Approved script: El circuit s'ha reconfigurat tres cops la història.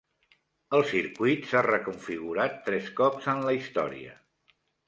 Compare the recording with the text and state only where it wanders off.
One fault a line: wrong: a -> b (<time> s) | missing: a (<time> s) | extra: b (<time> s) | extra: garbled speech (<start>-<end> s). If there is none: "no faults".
extra: en (3.4 s)